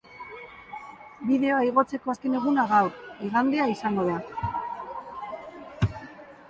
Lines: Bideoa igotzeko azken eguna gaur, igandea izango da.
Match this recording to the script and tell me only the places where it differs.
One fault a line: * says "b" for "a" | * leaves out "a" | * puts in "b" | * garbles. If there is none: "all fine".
all fine